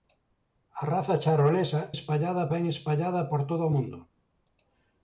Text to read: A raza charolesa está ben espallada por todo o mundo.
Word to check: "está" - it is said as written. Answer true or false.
false